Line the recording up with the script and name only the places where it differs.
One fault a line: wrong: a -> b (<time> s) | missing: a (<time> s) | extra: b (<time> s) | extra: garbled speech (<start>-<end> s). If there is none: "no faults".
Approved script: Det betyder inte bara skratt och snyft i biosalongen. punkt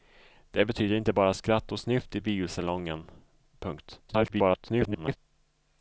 extra: garbled speech (4.1-5.2 s)